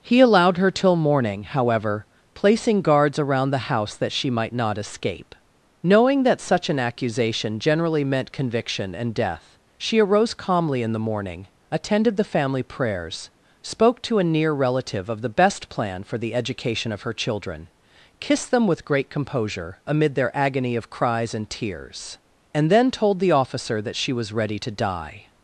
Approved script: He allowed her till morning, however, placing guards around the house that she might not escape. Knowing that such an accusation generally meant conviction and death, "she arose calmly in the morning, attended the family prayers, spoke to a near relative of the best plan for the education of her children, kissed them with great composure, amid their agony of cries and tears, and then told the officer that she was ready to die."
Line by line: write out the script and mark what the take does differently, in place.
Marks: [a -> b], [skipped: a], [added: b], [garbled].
He allowed her till morning, however, placing guards around the house that she might not escape. Knowing that such an accusation generally meant conviction and death, "she arose calmly in the morning, attended the family prayers, spoke to a near relative of the best plan for the education of her children, kissed them with great composure, amid their agony of cries and tears, and then told the officer that she was ready to die."